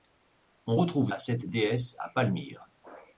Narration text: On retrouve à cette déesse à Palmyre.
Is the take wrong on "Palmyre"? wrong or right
right